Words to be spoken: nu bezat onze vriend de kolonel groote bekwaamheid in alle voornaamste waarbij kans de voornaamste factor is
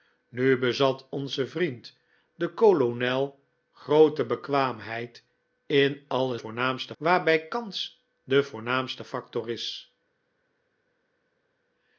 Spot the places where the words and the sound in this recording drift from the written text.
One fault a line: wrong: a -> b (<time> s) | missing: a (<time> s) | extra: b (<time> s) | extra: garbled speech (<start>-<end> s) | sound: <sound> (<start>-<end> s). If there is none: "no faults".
no faults